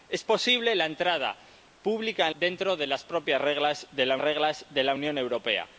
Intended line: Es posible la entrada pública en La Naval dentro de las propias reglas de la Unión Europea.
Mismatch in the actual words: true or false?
true